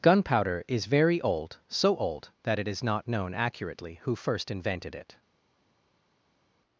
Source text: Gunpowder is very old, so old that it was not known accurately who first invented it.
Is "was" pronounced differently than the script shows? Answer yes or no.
yes